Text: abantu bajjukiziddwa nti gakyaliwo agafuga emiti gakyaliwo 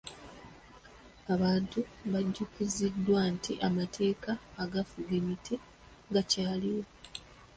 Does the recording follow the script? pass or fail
fail